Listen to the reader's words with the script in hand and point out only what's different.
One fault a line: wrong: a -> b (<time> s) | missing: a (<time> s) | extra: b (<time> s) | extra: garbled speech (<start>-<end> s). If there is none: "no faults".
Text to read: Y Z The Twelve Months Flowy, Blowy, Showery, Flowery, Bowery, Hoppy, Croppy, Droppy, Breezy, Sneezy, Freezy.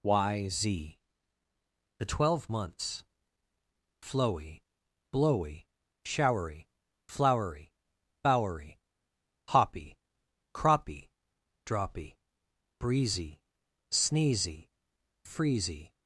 no faults